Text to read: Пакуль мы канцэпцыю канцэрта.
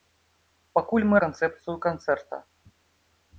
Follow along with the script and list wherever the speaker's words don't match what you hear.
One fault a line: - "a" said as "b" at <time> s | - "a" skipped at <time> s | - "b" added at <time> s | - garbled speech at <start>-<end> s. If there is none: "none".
none